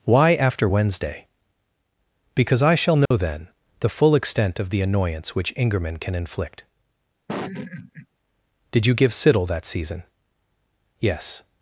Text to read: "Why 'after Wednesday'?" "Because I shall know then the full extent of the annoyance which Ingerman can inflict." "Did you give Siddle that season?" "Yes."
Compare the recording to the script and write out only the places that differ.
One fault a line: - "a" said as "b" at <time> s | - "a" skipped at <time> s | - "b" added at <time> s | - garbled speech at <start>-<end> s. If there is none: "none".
none